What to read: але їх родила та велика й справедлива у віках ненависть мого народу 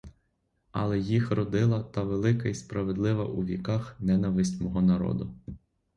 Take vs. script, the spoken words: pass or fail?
pass